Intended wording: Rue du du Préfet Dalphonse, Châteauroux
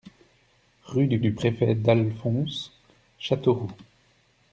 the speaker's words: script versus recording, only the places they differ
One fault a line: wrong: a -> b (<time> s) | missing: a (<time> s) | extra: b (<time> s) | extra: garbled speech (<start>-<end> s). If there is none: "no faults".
no faults